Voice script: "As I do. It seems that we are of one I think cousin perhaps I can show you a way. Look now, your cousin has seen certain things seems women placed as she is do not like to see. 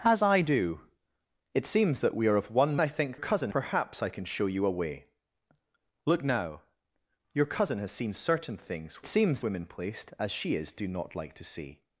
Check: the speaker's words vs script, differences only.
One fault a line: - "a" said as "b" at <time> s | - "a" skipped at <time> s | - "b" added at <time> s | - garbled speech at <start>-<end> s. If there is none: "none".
none